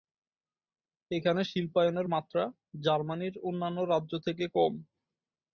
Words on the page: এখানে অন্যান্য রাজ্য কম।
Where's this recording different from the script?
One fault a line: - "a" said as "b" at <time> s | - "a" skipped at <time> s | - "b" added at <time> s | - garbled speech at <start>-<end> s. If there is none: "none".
- "শিল্পায়নের মাত্রা জার্মানির" added at 1.4 s
- "থেকে" added at 4.3 s